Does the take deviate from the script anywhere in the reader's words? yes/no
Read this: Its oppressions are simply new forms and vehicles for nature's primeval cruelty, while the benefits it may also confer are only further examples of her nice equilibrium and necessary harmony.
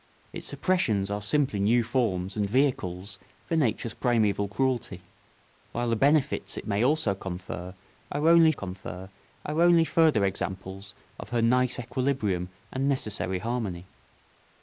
yes